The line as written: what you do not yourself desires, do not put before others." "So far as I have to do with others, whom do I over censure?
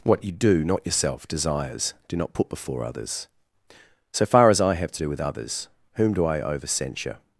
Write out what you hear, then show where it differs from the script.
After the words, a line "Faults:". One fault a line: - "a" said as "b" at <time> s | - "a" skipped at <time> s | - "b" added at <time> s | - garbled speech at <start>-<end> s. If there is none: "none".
what you do not yourself desires, do not put before others." "So far as I have to do with others, whom do I over censure?
Faults:
none